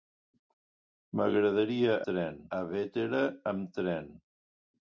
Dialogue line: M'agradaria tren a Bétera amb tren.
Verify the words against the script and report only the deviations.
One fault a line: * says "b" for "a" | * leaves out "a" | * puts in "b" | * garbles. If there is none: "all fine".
all fine